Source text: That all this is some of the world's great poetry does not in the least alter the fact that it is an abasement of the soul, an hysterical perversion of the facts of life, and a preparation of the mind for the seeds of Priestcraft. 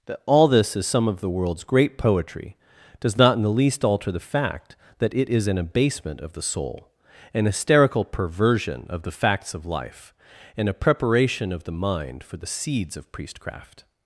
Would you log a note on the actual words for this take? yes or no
no